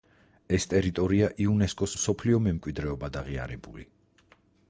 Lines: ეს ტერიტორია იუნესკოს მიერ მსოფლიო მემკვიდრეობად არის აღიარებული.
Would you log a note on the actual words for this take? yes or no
yes